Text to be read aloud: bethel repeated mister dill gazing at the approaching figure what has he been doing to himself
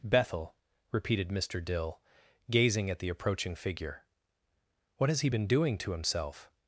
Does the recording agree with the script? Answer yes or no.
yes